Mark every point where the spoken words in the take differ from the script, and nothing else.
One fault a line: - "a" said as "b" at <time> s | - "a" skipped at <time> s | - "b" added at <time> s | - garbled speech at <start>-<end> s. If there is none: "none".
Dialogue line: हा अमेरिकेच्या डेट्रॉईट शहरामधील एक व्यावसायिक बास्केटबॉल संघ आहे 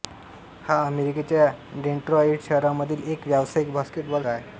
- "संघ" skipped at 4.2 s